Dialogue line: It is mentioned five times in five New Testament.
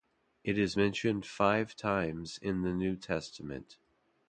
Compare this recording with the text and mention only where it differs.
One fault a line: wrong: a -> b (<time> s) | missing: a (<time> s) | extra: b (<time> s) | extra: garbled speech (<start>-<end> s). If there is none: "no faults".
wrong: five -> the (2.6 s)